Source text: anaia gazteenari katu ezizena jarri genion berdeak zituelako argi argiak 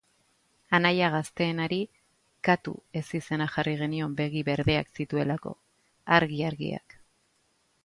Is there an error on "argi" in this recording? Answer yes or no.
no